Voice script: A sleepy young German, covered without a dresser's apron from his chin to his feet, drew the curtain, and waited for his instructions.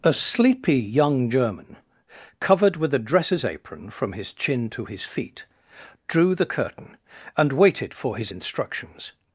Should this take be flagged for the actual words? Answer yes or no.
yes